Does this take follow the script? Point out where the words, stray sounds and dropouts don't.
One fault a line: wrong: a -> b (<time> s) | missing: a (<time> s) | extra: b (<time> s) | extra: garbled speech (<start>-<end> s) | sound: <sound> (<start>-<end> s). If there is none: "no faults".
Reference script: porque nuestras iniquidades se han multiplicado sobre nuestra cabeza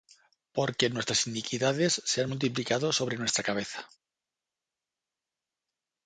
no faults